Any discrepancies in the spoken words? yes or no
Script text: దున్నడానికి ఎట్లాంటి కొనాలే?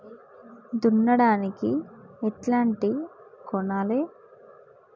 no